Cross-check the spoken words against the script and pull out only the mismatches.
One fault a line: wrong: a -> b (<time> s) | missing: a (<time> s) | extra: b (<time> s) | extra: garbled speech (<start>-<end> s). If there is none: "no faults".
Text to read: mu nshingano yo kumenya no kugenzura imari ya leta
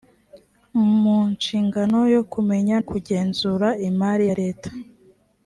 missing: no (2.8 s)